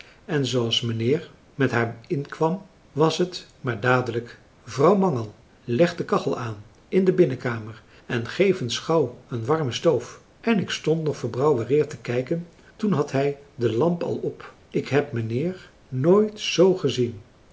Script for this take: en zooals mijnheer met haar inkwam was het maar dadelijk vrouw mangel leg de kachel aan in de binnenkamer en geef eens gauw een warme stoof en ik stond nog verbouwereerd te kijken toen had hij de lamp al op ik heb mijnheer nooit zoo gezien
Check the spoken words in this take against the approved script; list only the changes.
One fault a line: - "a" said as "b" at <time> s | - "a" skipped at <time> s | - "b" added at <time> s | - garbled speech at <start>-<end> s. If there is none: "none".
none